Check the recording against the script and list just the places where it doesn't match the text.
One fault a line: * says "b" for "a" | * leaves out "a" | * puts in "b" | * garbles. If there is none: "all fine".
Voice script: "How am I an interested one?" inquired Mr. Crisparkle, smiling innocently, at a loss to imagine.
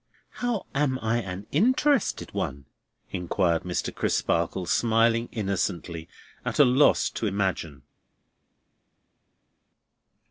all fine